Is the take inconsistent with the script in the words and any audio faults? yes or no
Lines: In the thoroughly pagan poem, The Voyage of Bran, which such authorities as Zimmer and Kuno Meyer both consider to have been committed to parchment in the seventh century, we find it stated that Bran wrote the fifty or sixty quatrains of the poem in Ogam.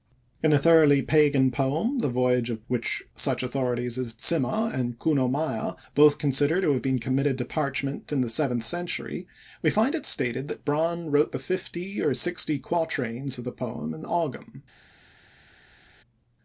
yes